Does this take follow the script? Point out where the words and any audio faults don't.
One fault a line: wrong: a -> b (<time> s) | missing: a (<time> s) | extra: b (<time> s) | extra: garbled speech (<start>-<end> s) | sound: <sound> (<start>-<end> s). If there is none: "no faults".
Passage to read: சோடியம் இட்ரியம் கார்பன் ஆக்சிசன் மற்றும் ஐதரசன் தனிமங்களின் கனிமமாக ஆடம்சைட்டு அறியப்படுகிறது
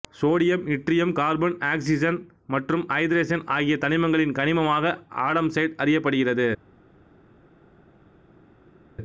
extra: ஆகிய (3.5 s)